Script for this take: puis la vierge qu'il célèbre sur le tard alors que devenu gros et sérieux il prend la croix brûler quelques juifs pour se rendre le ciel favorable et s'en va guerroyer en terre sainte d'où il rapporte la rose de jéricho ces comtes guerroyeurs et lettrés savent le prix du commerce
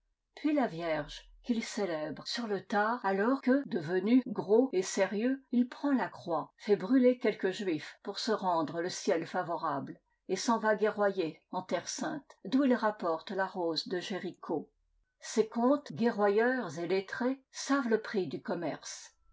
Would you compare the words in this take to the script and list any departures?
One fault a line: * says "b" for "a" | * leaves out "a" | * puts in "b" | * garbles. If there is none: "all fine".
* puts in "fait"